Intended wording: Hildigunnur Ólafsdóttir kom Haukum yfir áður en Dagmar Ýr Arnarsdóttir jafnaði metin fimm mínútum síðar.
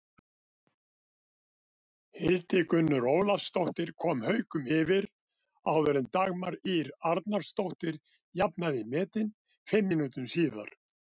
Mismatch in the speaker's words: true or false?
false